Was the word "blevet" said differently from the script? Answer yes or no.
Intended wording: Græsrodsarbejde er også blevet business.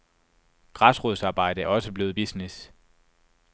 no